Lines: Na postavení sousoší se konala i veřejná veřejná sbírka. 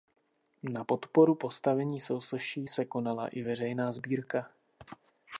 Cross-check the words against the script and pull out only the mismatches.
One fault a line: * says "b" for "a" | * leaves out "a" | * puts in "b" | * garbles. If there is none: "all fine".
* puts in "podporu"
* leaves out "veřejná"